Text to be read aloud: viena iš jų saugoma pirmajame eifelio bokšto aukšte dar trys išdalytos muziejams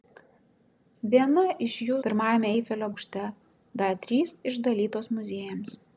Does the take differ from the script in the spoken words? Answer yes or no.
yes